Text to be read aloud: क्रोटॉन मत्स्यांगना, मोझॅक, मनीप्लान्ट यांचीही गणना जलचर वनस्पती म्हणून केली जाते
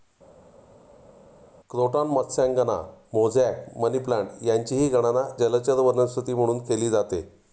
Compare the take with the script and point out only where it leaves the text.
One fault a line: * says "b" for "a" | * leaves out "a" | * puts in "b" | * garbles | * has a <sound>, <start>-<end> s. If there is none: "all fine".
all fine